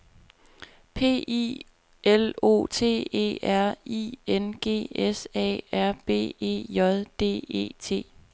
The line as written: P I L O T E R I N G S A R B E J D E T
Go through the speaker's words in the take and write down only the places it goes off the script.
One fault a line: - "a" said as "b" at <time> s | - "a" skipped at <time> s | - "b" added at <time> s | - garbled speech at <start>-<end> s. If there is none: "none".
none